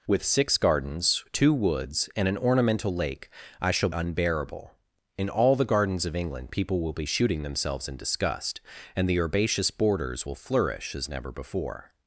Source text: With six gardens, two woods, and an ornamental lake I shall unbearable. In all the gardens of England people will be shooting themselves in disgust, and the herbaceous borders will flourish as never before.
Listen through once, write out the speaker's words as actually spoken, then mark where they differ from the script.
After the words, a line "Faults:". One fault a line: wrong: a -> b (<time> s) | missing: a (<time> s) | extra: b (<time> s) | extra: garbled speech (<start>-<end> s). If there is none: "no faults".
With six gardens, two woods, and an ornamental lake I shall unbearable. In all the gardens of England people will be shooting themselves in disgust, and the herbaceous borders will flourish as never before.
Faults:
no faults